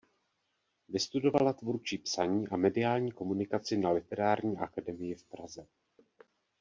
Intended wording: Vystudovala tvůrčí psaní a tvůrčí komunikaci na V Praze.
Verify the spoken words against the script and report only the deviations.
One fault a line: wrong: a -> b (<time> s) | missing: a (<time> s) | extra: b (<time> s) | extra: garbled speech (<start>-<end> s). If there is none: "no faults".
wrong: tvůrčí -> mediální (2.6 s)
extra: Literární akademii (3.9 s)